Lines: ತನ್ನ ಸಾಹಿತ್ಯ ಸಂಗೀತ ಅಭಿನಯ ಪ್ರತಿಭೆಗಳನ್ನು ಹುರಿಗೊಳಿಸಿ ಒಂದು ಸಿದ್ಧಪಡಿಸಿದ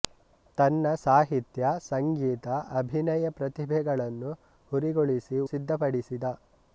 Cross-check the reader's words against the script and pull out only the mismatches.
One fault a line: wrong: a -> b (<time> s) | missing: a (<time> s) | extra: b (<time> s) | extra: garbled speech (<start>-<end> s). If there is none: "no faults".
missing: ಒಂದು (5.4 s)